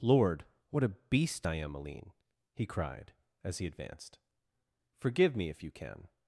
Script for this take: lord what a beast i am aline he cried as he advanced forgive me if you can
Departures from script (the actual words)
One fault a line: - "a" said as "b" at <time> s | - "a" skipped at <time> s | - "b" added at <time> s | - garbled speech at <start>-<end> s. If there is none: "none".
none